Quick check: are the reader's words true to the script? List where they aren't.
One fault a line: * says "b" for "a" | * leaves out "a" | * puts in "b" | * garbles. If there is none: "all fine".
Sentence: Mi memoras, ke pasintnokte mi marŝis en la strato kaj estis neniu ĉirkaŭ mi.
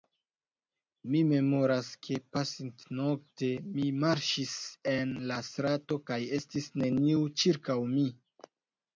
all fine